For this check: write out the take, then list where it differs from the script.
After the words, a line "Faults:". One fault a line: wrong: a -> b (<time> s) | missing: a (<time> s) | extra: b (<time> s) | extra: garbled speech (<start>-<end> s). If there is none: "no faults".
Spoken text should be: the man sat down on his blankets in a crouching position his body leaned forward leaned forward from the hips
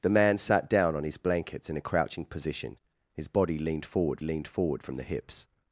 the man sat down on his blankets in a crouching position his body leaned forward leaned forward from the hips
Faults:
no faults